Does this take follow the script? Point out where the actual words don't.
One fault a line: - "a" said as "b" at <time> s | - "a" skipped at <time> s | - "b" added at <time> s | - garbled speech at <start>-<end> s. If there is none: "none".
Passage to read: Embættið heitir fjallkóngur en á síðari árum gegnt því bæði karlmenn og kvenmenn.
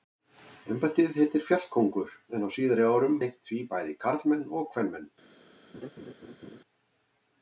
none